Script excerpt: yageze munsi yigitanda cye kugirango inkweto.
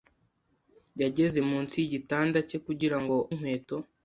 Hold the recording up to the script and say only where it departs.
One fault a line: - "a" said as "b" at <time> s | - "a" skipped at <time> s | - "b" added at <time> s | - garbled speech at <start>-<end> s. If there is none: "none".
none